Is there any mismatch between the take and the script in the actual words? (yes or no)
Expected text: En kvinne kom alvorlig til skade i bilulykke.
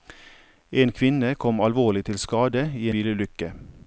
no